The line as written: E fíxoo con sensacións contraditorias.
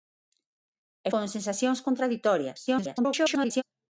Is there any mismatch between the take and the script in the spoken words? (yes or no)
yes